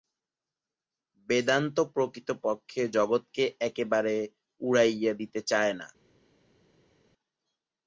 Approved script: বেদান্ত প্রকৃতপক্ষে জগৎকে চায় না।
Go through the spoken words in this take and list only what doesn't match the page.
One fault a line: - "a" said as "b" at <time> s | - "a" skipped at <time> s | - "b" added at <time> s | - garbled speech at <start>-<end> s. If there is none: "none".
- "একেবারে উড়াইয়া দিতে" added at 3.6 s